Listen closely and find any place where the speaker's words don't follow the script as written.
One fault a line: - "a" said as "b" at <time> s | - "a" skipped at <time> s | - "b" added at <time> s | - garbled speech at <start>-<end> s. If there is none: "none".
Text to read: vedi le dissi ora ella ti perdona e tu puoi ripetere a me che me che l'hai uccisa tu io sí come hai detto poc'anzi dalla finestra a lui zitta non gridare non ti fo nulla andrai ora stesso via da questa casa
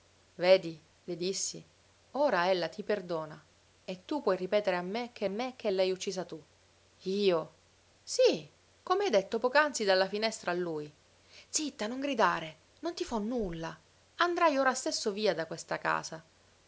none